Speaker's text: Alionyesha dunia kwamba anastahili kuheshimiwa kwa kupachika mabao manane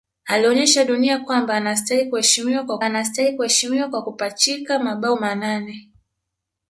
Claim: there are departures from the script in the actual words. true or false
true